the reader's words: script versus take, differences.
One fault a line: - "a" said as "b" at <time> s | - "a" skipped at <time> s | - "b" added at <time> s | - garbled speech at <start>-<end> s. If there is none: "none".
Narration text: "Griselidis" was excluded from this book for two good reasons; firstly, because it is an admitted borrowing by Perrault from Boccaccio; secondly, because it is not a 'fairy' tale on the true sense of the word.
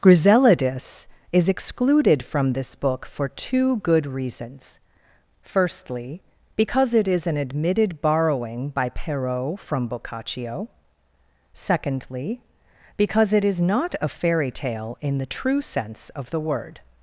- "was" said as "is" at 1.3 s
- "on" said as "in" at 15.0 s